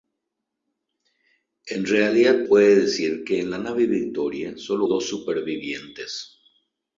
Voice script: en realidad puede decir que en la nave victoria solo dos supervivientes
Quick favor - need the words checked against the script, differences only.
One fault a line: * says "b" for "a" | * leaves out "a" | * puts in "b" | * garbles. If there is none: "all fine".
all fine